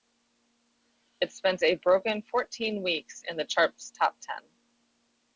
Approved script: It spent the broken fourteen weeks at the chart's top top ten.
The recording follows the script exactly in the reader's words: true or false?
false